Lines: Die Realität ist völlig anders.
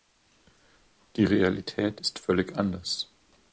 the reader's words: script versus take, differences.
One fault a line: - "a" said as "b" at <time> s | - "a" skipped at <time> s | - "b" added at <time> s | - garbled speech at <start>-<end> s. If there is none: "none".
none